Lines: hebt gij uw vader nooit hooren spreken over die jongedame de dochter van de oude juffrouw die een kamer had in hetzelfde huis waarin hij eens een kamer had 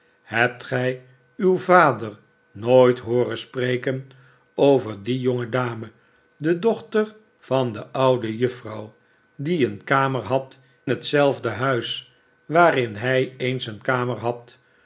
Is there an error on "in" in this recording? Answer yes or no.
yes